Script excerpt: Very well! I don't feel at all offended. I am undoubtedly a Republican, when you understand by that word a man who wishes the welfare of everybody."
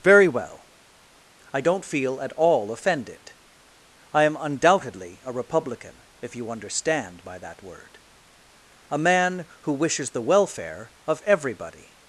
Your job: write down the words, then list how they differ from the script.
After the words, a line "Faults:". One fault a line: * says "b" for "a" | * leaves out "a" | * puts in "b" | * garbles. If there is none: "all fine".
Very well! I don't feel at all offended. I am undoubtedly a Republican, if you understand by that word a man who wishes the welfare of everybody."
Faults:
* says "if" for "when"